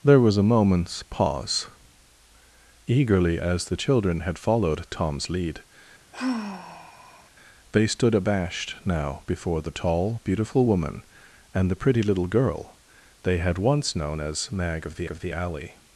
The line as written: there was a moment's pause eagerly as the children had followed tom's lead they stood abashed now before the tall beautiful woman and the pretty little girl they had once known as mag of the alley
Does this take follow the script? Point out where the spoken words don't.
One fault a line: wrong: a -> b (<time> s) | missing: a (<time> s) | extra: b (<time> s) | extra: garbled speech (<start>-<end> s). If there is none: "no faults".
extra: of the (15.1 s)